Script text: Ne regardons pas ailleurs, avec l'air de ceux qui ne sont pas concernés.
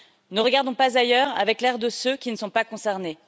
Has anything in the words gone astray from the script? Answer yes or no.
no